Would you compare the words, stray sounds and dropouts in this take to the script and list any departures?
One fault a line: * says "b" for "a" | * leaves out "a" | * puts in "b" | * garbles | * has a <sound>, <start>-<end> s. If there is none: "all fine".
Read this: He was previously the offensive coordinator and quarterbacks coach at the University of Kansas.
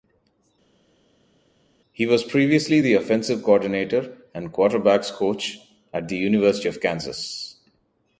all fine